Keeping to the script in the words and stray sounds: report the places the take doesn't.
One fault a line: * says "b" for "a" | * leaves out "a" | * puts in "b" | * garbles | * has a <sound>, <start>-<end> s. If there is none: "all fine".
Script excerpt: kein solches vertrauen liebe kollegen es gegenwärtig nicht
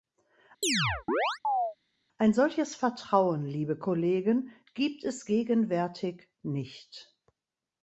* has a chirp, 0.6-1.8 s
* says "ein" for "kein"
* puts in "gibt"